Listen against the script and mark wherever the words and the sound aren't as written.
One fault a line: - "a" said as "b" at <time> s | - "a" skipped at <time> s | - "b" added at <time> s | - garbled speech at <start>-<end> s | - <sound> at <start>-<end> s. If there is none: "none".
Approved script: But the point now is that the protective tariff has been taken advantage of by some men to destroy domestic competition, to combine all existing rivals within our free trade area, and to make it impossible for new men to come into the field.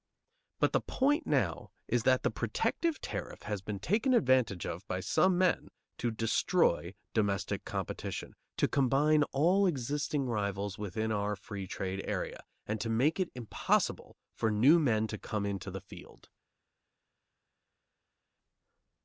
none